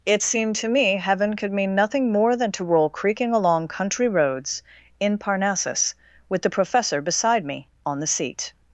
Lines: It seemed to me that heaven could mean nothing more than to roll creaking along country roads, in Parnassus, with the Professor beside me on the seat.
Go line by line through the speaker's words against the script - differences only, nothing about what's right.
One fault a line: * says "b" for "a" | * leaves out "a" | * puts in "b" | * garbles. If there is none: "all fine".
* leaves out "that"